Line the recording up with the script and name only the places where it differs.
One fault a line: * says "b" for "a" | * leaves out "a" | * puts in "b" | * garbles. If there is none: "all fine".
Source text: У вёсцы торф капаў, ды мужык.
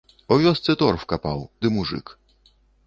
all fine